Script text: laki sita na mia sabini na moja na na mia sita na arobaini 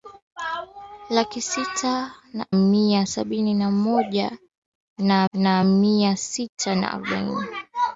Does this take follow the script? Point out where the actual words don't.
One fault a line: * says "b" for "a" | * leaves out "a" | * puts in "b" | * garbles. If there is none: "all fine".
all fine